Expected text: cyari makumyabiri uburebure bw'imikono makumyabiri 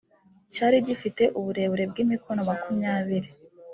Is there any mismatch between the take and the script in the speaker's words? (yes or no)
yes